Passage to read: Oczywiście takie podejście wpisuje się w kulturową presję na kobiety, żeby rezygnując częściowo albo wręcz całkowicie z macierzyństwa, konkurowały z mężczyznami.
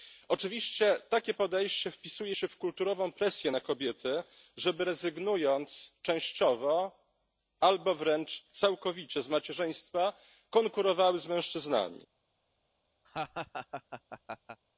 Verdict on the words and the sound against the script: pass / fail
fail